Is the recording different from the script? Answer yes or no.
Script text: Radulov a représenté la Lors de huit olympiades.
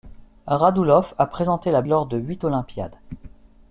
no